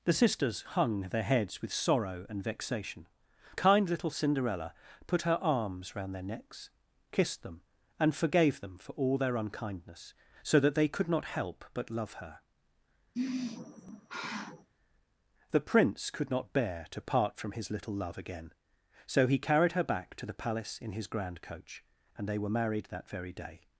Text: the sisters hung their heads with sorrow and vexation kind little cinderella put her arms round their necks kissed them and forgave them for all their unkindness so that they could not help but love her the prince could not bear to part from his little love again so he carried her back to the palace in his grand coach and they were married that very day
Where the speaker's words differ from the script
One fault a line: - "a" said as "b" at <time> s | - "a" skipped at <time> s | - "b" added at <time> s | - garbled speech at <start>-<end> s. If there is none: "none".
none